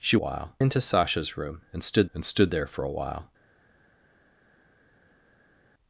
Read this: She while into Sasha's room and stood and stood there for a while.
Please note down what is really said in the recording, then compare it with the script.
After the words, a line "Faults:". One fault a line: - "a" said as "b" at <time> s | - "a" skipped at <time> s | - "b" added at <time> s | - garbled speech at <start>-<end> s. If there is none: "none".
She while into Sasha's room and stood and stood there for a while.
Faults:
none